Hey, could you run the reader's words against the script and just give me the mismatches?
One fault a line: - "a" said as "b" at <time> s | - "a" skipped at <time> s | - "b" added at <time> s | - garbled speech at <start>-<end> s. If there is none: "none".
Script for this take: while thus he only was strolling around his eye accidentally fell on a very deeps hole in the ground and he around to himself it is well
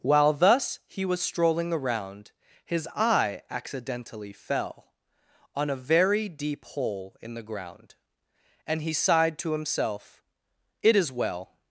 - "only" skipped at 1.1 s
- "deeps" said as "deep" at 6.3 s
- "around" said as "sighed" at 8.9 s